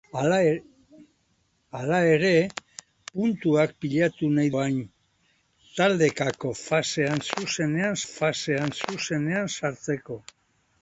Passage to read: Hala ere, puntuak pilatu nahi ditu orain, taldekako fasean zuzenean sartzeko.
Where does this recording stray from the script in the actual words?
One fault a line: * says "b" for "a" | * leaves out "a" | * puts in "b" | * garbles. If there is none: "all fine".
* leaves out "ditu"
* puts in "fasean zuzenean"